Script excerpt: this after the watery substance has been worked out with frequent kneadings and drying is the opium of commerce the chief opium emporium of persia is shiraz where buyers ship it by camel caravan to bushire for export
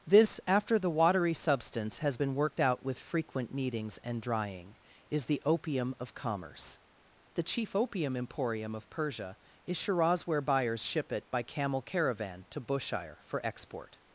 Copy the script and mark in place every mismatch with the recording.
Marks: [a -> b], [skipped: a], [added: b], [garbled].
this after the watery substance has been worked out with frequent kneadings and drying is the opium of commerce the chief opium emporium of persia is shiraz where buyers ship it by camel caravan to bushire for export